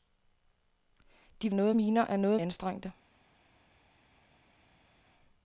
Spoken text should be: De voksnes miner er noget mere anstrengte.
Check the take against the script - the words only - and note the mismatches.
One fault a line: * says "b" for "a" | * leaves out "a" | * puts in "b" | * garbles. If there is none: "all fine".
* says "noget" for "voksnes"
* leaves out "mere"